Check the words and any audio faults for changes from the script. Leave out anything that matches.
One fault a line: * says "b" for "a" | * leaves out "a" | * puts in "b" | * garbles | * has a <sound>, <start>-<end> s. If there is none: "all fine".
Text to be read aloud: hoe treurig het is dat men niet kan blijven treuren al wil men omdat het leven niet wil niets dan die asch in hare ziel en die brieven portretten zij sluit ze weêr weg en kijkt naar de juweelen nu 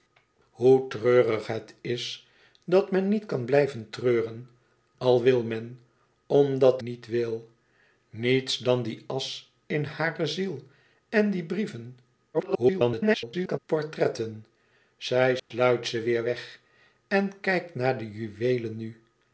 * leaves out "het leven"
* garbles
* has a dropout, 15.4-15.5 s